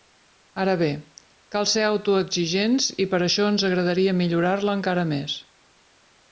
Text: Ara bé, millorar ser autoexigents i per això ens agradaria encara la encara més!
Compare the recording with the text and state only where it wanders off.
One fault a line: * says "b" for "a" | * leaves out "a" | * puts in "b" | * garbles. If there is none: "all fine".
* says "cal" for "millorar"
* says "millorar" for "encara"